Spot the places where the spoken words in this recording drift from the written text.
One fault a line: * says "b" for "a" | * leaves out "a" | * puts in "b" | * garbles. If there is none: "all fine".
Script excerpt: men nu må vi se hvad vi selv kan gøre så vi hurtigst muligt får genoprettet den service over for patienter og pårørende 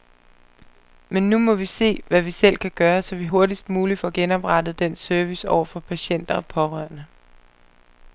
all fine